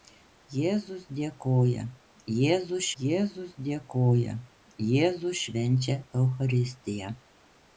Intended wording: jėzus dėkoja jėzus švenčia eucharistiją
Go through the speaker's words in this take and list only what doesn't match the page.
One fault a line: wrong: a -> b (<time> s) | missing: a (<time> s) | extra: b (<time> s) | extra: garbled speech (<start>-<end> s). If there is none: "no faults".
extra: jėzus dėkoja jėzus (3.0 s)